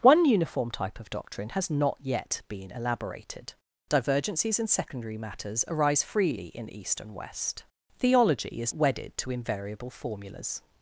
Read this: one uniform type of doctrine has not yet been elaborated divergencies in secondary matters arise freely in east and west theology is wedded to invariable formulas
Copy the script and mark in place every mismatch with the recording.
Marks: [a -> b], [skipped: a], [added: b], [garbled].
one uniform type of doctrine has not yet been elaborated divergencies in secondary matters arise freely in east and west theology is wedded to invariable formulas